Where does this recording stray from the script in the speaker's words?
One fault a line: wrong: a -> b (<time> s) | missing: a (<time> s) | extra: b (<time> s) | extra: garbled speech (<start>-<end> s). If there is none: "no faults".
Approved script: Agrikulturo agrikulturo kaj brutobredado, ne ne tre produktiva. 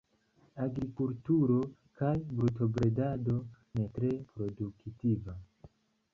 missing: agrikulturo (1.6 s)
missing: ne (3.9 s)